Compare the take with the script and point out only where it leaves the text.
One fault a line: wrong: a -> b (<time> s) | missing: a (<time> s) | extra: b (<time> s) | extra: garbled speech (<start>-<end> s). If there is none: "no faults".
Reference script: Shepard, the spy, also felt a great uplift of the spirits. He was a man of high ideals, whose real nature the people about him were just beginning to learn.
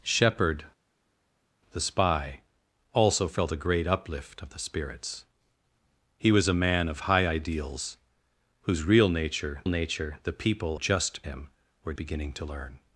extra: nature (9.7 s)
wrong: about -> just (10.7 s)
missing: just (11.9 s)